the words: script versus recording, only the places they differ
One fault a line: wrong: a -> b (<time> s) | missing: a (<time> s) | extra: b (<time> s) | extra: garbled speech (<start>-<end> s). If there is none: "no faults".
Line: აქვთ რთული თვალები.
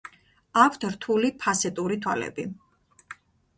extra: ფასეტური (1.4 s)